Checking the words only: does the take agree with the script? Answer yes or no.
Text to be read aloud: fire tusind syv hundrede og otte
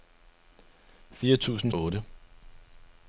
no